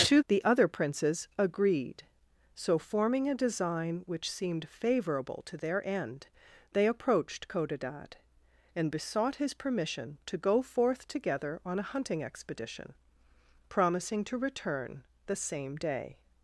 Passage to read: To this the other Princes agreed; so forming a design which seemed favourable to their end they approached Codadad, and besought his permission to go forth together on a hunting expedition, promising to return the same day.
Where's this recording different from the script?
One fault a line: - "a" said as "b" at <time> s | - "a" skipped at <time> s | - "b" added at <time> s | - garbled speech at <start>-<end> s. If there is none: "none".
- "this" skipped at 0.2 s